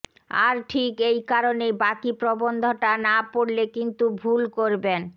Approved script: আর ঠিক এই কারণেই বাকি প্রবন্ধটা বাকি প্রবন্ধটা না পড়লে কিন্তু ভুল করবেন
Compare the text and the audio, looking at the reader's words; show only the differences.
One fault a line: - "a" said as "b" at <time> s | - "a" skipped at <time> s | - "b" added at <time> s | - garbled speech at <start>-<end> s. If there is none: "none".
- "বাকি প্রবন্ধটা" skipped at 2.9 s